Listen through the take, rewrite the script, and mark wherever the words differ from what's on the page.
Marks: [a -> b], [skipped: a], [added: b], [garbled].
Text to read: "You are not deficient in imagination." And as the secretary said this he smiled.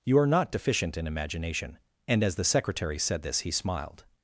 "You are not deficient in imagination." And as the secretary said this he smiled.